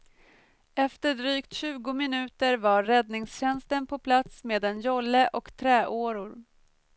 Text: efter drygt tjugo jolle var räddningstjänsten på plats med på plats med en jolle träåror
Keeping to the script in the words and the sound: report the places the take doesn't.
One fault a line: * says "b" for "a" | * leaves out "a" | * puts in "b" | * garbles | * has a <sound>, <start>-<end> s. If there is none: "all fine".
* says "minuter" for "jolle"
* leaves out "på plats med"
* puts in "och"